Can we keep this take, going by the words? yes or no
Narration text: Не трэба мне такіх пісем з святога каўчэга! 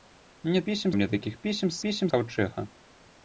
no